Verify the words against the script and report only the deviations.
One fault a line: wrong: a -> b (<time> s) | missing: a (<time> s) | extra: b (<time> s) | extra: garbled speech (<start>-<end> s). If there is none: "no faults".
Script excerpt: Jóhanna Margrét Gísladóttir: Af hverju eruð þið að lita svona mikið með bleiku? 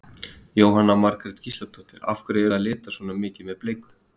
missing: eruð (2.5 s)